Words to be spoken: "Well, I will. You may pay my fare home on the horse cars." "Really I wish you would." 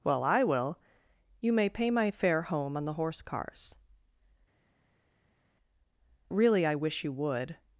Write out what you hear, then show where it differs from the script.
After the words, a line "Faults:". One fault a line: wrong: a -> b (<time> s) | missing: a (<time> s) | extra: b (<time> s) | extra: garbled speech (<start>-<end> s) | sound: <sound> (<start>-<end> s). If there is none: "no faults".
"Well, I will. You may pay my fare home on the horse cars." "Really I wish you would."
Faults:
no faults